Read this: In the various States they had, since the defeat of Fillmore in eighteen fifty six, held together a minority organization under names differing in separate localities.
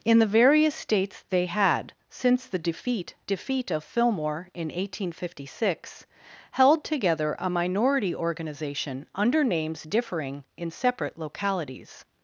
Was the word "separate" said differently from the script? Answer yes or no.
no